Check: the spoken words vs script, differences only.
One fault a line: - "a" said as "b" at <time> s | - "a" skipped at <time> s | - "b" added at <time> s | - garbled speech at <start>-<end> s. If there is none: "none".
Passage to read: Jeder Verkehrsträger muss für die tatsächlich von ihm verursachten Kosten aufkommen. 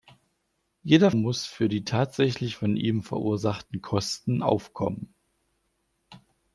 - "Verkehrsträger" skipped at 1.1 s